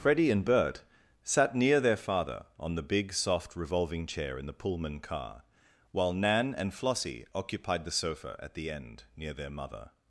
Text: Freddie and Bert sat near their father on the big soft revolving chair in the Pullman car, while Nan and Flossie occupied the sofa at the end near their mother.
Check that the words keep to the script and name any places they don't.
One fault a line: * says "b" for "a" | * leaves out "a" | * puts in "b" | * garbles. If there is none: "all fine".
all fine